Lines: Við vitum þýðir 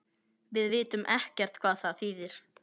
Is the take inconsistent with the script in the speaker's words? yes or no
yes